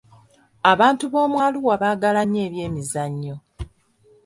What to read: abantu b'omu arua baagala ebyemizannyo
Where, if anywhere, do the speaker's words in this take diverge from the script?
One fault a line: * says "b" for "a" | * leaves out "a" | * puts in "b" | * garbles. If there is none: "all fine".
* puts in "nnyo"